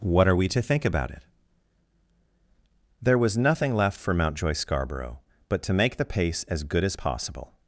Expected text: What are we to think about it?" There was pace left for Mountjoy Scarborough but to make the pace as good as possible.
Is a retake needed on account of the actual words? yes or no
yes